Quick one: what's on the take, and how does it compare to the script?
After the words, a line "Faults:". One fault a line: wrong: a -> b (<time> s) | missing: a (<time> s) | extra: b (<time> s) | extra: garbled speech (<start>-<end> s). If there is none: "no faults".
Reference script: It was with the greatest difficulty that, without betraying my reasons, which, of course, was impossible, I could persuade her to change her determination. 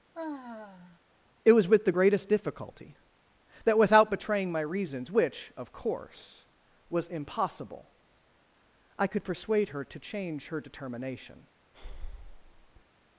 It was with the greatest difficulty that, without betraying my reasons, which, of course, was impossible, I could persuade her to change her determination.
Faults:
no faults